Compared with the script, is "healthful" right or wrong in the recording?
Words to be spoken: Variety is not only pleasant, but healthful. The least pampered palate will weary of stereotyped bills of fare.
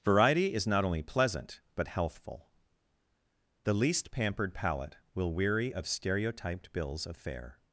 right